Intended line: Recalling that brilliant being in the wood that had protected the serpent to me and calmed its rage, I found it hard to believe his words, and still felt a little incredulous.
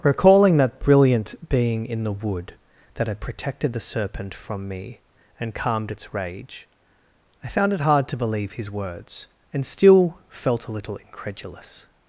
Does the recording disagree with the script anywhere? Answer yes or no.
yes